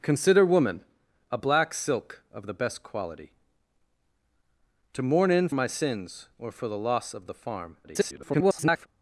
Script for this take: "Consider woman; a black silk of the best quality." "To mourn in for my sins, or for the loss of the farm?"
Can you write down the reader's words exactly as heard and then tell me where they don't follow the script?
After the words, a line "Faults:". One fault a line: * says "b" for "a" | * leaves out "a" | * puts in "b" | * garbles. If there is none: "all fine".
"Consider woman; a black silk of the best quality." "To mourn in my sins, or for the loss of the farm?" [garbled]
Faults:
* leaves out "for"
* garbles